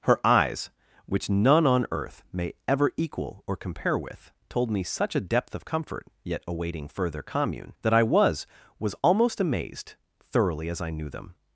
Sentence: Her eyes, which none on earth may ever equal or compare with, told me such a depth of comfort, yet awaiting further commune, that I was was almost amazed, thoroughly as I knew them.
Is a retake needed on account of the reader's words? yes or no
no